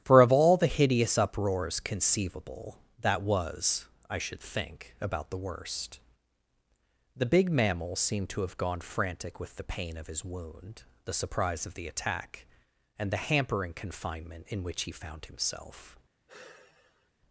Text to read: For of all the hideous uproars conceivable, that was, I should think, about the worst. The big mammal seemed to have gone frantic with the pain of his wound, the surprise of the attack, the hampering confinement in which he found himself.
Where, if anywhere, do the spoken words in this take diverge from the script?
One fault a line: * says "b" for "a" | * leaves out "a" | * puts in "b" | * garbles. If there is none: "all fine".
* puts in "and"